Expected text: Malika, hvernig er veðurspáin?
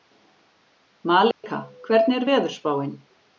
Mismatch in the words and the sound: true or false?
true